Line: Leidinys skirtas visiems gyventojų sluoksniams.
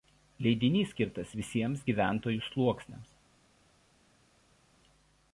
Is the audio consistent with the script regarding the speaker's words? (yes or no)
yes